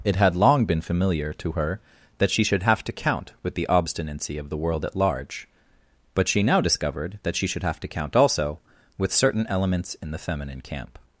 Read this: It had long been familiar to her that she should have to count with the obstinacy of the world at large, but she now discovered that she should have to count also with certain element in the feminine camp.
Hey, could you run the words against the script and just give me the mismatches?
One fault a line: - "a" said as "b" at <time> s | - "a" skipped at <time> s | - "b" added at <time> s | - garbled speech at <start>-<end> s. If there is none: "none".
- "element" said as "elements" at 9.5 s